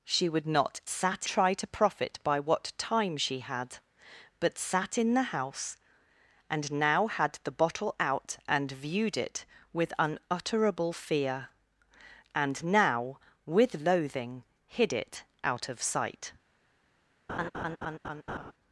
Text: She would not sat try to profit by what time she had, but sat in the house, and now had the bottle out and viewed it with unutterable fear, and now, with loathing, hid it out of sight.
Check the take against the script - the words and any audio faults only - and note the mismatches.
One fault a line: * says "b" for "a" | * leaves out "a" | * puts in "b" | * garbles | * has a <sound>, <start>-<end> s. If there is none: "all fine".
* has a laugh, 17.3-18.5 s